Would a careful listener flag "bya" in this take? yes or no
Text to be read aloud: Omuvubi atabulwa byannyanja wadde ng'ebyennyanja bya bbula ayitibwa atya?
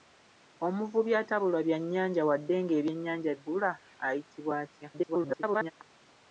yes